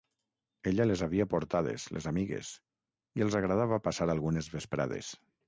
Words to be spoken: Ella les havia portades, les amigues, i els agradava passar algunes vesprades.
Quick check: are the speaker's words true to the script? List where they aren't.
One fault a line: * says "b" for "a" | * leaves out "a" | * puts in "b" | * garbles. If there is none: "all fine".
all fine